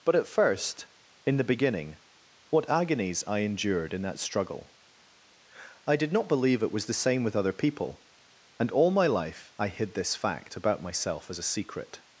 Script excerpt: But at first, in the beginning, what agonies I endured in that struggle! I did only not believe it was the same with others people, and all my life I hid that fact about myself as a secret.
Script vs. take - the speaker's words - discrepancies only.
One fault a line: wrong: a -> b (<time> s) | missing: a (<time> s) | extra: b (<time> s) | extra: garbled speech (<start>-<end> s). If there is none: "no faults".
missing: only (6.1 s)
wrong: others -> other (7.3 s)
wrong: that -> this (9.9 s)